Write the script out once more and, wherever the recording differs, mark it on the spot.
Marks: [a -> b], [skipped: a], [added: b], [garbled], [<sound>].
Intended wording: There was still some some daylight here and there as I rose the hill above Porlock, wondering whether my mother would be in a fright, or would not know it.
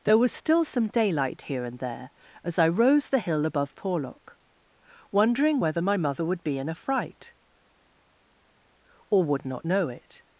There was still some [skipped: some] daylight here and there as I rose the hill above Porlock, wondering whether my mother would be in a fright, or would not know it.